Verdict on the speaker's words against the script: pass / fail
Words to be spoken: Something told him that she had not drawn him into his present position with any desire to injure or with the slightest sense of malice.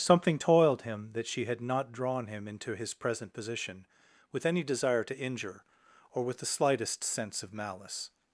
fail